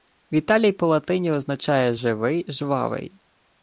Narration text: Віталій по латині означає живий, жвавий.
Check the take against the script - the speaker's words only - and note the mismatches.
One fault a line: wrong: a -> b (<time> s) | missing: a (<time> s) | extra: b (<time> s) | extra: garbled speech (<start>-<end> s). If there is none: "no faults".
no faults